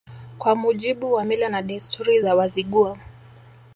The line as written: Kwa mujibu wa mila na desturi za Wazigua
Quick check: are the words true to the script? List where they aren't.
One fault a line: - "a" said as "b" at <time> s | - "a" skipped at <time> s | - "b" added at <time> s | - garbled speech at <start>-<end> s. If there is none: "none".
none